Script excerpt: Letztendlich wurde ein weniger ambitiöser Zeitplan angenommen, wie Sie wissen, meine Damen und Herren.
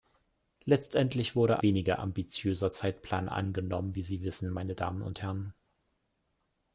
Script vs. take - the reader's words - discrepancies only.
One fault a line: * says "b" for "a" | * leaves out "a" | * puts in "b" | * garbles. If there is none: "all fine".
* leaves out "ein"